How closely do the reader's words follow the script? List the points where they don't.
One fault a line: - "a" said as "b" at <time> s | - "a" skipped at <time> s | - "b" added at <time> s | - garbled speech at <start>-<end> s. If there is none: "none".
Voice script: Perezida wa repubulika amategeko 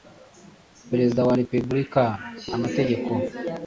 none